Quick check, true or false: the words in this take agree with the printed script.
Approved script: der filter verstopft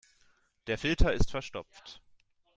false